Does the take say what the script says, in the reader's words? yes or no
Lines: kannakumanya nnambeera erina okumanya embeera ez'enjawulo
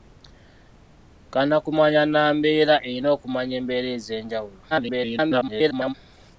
no